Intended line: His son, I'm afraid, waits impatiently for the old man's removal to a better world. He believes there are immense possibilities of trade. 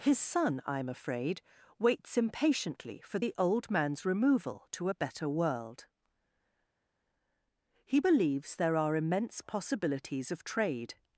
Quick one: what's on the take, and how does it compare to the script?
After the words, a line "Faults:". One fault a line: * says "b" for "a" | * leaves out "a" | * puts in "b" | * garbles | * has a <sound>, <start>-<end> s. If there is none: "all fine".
His son, I'm afraid, waits impatiently for the old man's removal to a better world. He believes there are immense possibilities of trade.
Faults:
all fine